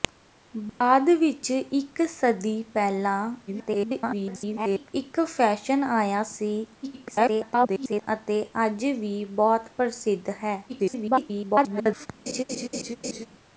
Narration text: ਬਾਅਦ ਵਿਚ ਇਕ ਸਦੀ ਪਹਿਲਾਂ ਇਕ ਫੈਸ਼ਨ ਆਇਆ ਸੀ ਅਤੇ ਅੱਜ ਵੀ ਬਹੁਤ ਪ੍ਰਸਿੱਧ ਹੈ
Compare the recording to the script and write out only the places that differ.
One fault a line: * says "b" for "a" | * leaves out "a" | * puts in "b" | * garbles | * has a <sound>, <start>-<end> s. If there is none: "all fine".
* has a dropout, 0.7-0.8 s
* garbles
* garbles
* garbles
* has a laugh, 12.3-13.3 s